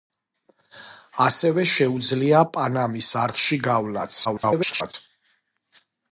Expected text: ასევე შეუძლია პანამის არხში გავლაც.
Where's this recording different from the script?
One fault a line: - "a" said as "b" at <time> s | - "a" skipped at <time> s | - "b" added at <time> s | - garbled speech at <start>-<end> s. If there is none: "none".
- garbled speech at 4.2-4.9 s